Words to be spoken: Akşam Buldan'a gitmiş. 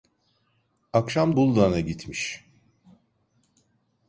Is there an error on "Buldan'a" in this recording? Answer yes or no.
no